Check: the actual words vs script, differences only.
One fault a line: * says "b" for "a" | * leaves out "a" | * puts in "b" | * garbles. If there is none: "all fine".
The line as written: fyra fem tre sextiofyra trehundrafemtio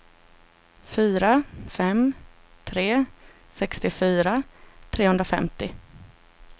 all fine